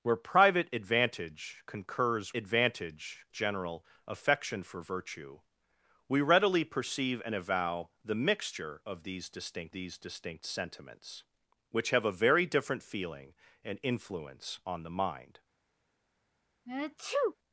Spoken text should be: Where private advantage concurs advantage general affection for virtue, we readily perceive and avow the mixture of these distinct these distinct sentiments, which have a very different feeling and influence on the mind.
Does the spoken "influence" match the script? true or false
true